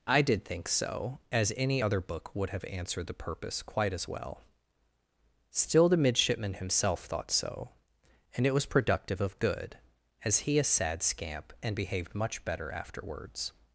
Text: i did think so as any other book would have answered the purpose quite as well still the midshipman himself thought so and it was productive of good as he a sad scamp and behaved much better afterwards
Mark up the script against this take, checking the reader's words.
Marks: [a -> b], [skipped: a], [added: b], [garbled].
i did think so as any other book would have answered the purpose quite as well still the midshipman himself thought so and it was productive of good as he a sad scamp and behaved much better afterwards